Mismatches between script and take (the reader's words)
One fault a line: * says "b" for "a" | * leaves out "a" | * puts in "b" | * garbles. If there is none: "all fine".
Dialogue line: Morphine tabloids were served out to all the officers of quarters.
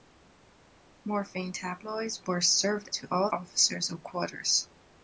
* leaves out "out"
* leaves out "the"